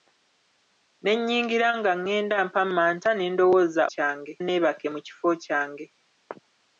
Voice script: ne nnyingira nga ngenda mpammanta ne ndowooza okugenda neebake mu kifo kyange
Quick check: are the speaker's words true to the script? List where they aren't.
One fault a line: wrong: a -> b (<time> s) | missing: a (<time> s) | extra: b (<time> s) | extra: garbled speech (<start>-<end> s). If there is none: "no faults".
wrong: okugenda -> kyange (3.9 s)